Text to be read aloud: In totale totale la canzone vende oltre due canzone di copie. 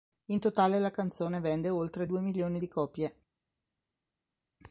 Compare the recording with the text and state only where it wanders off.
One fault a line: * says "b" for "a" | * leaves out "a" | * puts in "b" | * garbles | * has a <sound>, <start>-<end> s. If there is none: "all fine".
* leaves out "totale"
* says "milioni" for "canzone"